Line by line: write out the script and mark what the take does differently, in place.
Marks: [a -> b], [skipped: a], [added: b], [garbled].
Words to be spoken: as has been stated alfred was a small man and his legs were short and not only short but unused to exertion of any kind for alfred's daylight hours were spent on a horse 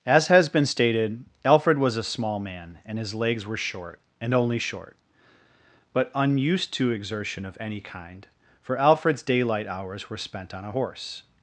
as has been stated alfred was a small man and his legs were short and [skipped: not] only short but unused to exertion of any kind for alfred's daylight hours were spent on a horse